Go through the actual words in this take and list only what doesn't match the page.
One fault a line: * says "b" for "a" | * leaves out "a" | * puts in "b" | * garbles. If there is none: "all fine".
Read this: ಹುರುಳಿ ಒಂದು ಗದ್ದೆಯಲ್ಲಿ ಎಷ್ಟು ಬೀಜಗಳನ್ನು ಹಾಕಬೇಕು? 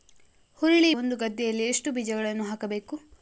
all fine